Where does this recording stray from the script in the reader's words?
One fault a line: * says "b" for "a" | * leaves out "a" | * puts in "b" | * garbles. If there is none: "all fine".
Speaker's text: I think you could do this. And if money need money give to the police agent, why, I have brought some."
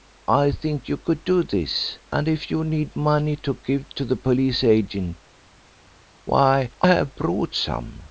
* says "you" for "money"
* puts in "to"